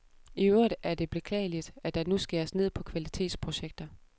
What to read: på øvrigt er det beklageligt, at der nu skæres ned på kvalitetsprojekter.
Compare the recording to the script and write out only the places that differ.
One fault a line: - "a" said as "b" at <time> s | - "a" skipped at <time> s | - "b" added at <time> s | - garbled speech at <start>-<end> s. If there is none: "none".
- "på" said as "I" at 0.3 s